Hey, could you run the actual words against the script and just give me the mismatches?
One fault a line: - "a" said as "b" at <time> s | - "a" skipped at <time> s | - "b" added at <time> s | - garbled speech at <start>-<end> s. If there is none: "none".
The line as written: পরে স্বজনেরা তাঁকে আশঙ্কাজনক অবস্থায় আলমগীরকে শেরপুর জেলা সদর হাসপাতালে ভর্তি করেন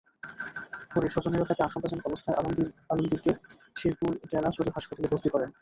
none